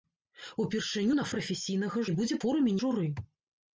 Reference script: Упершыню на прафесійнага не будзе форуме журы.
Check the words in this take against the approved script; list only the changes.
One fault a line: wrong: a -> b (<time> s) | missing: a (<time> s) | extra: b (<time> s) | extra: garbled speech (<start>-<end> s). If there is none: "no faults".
no faults